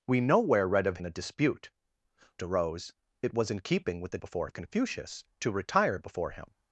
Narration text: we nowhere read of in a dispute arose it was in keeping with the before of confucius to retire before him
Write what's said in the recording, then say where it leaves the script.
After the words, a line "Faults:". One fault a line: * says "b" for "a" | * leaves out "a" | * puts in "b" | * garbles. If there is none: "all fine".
we nowhere read of in a dispute arose it was in keeping with the before of confucius to retire before him
Faults:
all fine